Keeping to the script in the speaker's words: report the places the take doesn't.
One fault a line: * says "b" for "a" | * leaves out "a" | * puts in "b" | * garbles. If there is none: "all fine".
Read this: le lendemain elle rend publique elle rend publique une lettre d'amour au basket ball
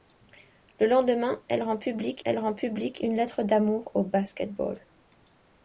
all fine